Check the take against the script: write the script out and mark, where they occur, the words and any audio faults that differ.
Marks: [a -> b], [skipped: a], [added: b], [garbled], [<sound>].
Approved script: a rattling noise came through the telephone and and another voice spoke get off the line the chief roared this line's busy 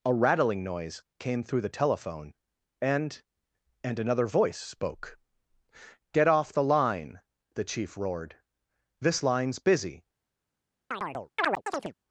a rattling noise came through the telephone and and another voice spoke get off the line the chief roared this line's busy [chirp]